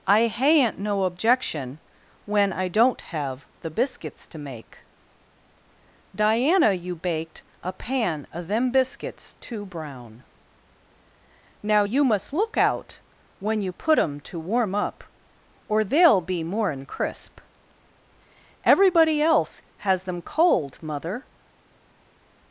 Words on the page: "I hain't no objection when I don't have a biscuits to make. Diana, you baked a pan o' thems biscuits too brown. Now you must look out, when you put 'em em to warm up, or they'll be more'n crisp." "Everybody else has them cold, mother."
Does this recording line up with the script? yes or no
no